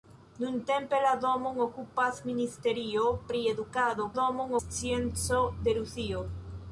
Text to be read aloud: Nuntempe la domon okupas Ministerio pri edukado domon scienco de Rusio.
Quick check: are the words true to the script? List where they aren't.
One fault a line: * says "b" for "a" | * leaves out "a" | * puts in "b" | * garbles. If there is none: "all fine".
all fine